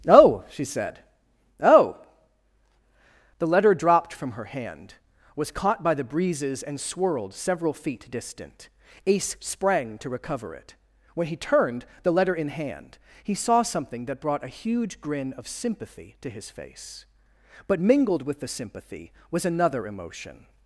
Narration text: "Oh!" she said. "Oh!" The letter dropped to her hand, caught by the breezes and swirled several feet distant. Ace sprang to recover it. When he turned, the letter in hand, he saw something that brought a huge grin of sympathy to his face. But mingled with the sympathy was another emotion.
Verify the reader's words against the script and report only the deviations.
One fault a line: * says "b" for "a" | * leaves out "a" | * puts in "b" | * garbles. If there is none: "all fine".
* says "from" for "to"
* puts in "was"